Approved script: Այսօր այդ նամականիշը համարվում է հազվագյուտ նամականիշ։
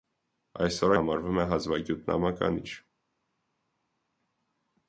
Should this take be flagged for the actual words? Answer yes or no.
yes